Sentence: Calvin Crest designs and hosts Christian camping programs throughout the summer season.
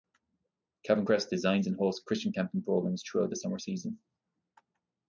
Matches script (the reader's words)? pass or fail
pass